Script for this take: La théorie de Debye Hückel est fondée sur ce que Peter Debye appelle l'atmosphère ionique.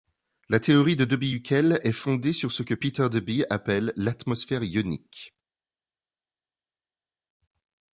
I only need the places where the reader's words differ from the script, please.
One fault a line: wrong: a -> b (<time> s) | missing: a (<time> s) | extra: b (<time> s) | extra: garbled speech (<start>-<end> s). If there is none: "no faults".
no faults